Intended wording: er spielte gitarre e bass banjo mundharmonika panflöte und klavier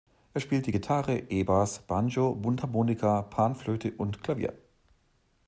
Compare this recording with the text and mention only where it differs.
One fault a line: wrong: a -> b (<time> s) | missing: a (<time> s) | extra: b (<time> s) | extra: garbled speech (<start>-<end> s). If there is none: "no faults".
no faults